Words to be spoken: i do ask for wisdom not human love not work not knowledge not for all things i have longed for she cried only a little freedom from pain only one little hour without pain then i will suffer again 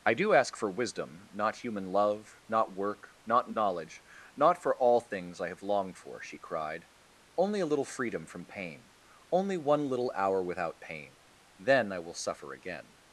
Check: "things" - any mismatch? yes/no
no